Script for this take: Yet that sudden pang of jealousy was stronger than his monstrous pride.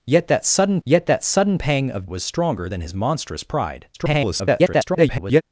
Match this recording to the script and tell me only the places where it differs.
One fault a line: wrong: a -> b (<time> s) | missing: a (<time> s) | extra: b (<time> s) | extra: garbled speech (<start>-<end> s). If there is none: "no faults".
extra: yet that sudden (0.8 s)
missing: jealousy (2.1 s)
extra: garbled speech (3.9-5.4 s)